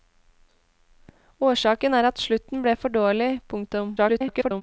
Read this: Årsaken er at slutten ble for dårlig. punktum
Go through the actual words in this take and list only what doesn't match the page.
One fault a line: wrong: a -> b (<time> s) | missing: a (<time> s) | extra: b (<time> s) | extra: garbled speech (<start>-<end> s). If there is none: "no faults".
extra: garbled speech (4.0-4.6 s)